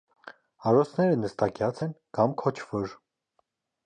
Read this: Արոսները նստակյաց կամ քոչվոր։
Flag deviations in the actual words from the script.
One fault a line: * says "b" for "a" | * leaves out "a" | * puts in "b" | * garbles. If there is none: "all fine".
* puts in "են"